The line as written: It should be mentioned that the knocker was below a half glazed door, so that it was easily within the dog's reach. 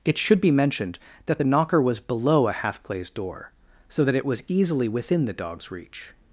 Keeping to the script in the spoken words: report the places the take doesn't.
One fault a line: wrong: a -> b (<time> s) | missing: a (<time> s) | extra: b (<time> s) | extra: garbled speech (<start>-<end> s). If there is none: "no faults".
no faults